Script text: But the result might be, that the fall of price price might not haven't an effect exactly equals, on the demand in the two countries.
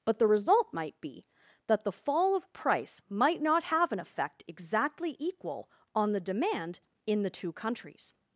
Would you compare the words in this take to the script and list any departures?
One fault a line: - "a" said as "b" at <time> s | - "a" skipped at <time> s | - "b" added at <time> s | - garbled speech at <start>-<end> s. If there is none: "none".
- "price" skipped at 3.0 s
- "haven't" said as "have" at 3.6 s
- "equals" said as "equal" at 5.2 s